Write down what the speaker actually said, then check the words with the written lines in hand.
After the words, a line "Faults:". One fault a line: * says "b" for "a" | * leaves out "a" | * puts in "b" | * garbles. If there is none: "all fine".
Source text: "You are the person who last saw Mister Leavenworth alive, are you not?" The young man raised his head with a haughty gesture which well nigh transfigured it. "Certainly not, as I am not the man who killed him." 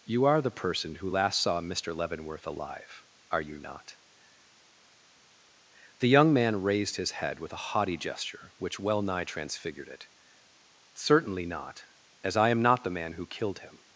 "You are the person who last saw Mister Leavenworth alive, are you not?" The young man raised his head with a haughty gesture which well nigh transfigured it. "Certainly not, as I am not the man who killed him."
Faults:
all fine